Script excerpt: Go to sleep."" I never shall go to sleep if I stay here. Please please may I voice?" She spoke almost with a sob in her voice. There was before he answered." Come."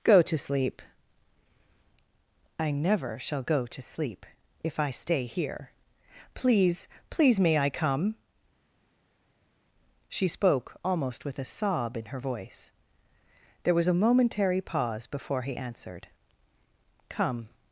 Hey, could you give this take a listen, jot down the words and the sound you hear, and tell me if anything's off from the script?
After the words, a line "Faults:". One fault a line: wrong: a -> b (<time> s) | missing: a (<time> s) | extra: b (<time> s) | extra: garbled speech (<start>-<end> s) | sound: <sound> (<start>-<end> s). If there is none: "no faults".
Go to sleep."" I never shall go to sleep if I stay here. Please please may I come?" She spoke almost with a sob in her voice. There was a momentary pause before he answered." Come."
Faults:
wrong: voice -> come (7.7 s)
extra: a momentary pause (13.9 s)